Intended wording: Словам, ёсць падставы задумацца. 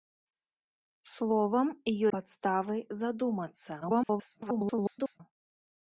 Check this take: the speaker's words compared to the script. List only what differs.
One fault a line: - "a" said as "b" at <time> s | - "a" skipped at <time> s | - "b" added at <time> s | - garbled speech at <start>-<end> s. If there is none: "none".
- "ёсць" skipped at 1.7 s
- garbled speech at 3.8-5.2 s